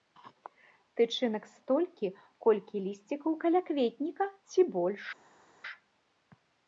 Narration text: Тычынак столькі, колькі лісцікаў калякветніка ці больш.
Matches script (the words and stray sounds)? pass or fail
pass